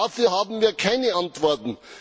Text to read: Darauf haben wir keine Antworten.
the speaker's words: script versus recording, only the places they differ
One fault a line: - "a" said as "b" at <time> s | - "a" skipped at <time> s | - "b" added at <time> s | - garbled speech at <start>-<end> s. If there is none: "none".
none